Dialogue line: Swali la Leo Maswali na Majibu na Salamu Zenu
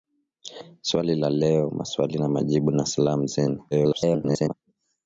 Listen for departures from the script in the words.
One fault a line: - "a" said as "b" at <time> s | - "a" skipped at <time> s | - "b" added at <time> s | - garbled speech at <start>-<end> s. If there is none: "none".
- garbled speech at 3.7-4.5 s